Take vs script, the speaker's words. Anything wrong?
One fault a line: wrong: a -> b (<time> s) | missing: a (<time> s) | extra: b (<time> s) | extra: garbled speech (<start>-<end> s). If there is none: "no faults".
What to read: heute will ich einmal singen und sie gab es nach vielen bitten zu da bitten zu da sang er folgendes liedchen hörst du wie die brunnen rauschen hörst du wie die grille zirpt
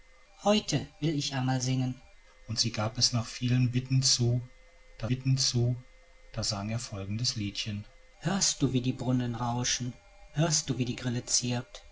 no faults